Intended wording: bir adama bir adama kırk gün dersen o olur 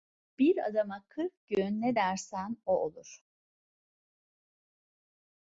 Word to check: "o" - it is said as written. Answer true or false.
true